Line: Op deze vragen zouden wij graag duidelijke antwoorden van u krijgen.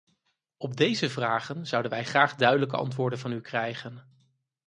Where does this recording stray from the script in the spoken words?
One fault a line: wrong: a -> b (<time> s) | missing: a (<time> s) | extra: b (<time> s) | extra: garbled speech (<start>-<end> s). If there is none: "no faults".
no faults